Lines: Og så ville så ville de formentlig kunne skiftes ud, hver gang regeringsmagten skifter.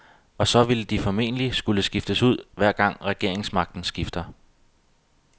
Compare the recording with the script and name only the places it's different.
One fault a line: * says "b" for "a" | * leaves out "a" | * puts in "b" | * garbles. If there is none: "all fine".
* leaves out "så ville"
* says "skulle" for "kunne"